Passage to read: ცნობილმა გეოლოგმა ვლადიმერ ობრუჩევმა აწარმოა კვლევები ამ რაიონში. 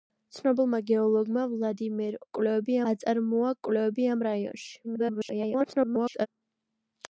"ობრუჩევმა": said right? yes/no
no